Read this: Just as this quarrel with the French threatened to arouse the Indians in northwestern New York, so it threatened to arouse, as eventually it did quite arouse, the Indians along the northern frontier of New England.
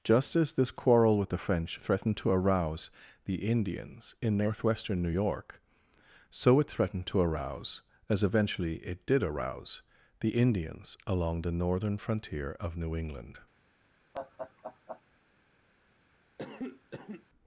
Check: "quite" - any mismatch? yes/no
yes